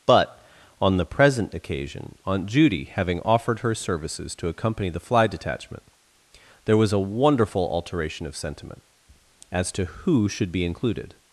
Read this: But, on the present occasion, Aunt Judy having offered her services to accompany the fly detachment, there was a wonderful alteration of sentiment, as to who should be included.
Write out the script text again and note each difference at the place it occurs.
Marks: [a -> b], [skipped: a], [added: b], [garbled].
But, on the present occasion, Aunt Judy having offered her services to accompany the fly detachment, there was a wonderful alteration of sentiment, as to who should be included.